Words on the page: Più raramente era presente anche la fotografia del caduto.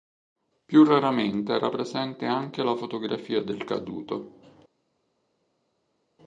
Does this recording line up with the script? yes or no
yes